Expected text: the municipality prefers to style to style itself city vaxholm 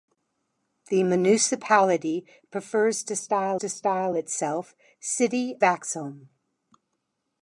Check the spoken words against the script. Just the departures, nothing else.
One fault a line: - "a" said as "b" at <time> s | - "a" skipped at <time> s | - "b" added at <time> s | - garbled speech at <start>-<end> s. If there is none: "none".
none